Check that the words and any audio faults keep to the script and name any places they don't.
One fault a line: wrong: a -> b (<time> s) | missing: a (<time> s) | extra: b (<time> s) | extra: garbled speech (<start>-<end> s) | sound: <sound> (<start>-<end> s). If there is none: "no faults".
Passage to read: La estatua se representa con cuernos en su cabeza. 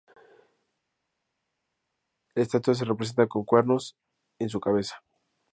no faults